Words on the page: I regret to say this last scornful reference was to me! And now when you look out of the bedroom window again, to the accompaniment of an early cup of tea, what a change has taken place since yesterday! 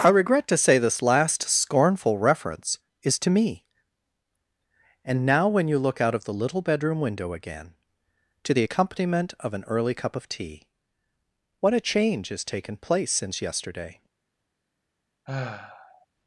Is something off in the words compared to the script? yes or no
yes